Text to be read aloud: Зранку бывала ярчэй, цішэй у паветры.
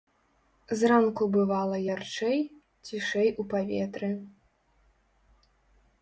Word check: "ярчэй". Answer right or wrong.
right